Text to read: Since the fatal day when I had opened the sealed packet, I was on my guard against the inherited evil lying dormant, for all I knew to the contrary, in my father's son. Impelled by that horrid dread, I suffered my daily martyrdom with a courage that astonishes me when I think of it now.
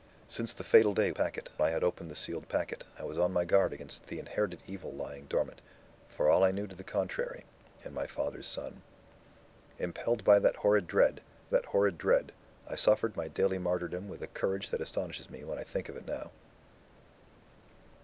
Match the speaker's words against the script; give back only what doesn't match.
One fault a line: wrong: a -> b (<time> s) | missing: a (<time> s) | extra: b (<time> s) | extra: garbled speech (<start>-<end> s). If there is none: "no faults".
wrong: when -> packet (1.1 s)
extra: that horrid dread (11.5 s)